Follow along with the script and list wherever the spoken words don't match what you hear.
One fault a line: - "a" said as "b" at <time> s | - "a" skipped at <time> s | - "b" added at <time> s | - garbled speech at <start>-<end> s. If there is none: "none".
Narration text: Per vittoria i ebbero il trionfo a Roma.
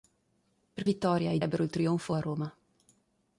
none